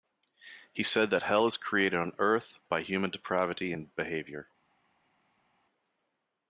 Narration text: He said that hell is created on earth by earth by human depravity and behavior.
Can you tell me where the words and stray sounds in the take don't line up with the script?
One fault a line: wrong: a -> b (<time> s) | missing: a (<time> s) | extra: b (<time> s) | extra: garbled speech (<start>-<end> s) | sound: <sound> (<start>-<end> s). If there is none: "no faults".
missing: earth by (2.8 s)